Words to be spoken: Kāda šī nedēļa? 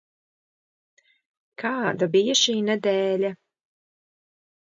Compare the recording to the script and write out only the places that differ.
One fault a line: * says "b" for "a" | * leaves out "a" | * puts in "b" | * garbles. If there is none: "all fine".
* puts in "bija"